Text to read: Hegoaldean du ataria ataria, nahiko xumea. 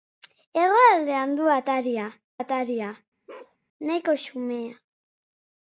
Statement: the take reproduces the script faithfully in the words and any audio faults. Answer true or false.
false